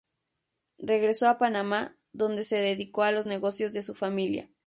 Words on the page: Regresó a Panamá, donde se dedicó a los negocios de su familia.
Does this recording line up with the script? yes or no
yes